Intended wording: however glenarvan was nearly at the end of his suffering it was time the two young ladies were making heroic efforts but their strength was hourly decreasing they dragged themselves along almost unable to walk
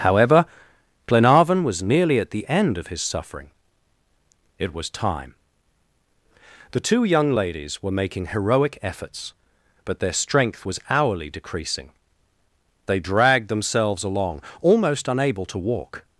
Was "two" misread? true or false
false